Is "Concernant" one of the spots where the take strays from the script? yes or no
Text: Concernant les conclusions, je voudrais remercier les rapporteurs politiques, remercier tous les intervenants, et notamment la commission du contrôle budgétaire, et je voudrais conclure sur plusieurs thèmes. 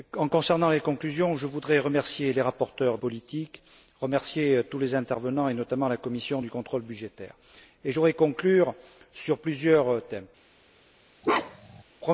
no